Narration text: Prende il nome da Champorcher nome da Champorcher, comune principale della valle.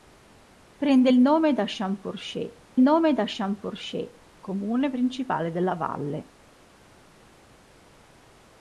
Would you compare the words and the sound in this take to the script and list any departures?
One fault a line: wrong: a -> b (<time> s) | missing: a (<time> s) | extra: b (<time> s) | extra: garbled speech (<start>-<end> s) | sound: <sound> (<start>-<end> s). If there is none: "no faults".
no faults